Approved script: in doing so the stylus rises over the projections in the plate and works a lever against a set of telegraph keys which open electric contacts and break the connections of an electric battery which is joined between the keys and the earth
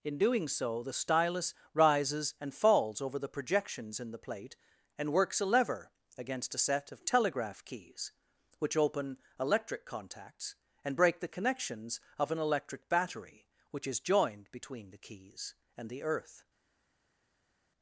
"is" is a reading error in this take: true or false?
false